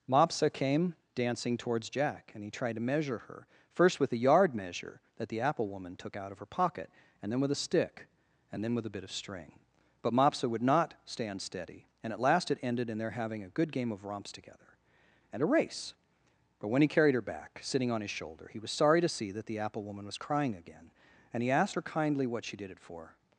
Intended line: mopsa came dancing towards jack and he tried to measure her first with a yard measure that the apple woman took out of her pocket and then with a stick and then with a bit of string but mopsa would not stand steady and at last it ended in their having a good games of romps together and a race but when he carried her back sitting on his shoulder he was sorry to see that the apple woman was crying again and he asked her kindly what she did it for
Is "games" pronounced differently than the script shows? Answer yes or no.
yes